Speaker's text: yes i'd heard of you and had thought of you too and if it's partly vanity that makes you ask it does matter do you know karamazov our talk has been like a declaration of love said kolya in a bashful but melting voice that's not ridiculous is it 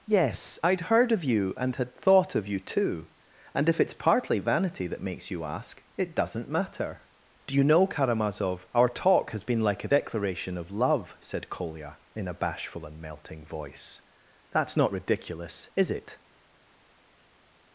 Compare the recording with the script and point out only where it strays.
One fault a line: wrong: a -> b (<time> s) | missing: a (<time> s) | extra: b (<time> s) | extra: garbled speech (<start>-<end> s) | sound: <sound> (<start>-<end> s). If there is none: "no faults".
wrong: does -> doesn't (6.1 s)
wrong: but -> and (12.9 s)